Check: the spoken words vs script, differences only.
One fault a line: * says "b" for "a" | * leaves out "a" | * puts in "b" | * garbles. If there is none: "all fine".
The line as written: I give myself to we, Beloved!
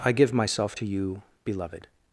* says "you" for "we"